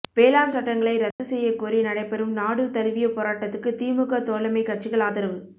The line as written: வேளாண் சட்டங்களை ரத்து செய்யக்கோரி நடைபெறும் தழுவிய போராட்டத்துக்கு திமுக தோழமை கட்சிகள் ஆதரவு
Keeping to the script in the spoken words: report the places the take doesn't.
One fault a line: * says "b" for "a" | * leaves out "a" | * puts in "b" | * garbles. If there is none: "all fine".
* puts in "நாடு"